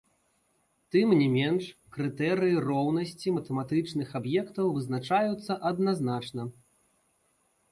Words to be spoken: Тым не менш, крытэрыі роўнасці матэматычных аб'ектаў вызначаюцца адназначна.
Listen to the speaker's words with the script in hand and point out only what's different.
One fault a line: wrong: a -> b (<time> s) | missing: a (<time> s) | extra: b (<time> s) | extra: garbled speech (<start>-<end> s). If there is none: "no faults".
no faults